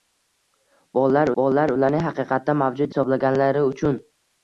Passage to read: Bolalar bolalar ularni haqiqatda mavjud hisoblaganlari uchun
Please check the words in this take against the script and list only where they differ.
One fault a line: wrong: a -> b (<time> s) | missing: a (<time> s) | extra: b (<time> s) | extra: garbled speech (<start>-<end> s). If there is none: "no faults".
no faults